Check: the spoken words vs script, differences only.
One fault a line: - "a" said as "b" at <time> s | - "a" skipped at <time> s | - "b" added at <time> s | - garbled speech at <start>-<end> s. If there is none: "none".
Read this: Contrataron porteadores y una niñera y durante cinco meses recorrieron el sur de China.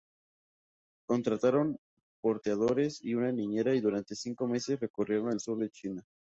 none